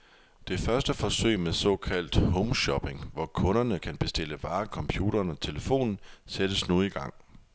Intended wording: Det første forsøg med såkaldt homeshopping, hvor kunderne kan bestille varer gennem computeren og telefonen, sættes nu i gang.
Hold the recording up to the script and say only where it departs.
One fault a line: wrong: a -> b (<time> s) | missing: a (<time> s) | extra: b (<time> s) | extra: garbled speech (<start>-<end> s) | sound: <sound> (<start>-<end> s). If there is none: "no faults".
missing: gennem (4.7 s)